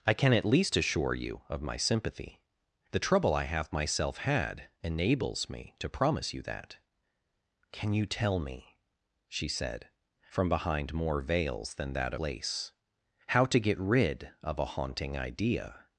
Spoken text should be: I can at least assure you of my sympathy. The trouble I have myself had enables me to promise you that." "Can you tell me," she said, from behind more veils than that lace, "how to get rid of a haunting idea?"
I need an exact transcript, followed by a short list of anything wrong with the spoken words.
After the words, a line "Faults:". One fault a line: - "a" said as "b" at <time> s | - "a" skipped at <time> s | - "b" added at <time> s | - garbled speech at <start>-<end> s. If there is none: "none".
I can at least assure you of my sympathy. The trouble I have myself had enables me to promise you that." "Can you tell me," she said, from behind more veils than that lace, "how to get rid of a haunting idea?"
Faults:
none